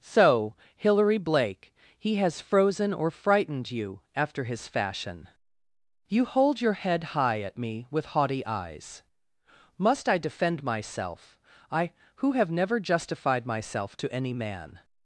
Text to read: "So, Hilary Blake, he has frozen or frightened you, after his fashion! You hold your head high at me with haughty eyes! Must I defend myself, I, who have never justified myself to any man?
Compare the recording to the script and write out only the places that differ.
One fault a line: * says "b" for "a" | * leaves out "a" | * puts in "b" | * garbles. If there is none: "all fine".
all fine